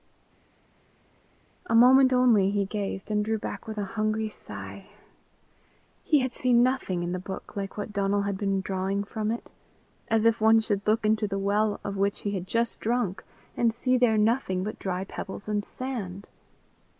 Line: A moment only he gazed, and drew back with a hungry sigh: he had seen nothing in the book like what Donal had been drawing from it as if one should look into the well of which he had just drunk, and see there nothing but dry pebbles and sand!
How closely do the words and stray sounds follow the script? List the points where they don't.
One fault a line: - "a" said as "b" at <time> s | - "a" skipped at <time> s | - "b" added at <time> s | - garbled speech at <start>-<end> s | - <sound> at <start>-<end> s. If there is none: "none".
none